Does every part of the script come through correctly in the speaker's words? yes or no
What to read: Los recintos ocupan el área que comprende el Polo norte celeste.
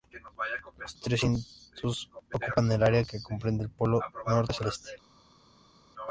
yes